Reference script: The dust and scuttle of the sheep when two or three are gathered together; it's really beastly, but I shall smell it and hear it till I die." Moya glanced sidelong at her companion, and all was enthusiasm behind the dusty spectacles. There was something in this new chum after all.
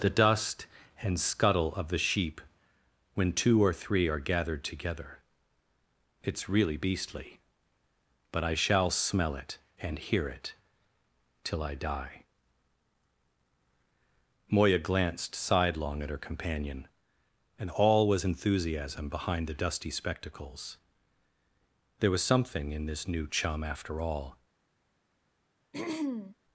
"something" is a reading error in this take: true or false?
false